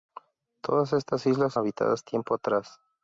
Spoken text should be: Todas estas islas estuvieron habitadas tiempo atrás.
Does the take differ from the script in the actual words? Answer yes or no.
yes